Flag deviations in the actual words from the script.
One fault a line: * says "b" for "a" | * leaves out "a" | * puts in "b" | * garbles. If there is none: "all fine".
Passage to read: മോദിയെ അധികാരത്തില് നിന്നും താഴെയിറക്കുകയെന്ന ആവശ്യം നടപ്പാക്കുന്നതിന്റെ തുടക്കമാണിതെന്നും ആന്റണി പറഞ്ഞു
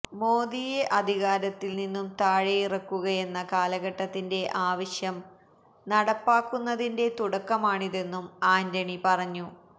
* puts in "കാലഘട്ടത്തിന്റെ"